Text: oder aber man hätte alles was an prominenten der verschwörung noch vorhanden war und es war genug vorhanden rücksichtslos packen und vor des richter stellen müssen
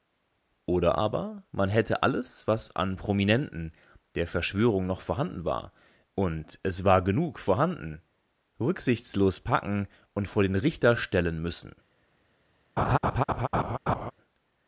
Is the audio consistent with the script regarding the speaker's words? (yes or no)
no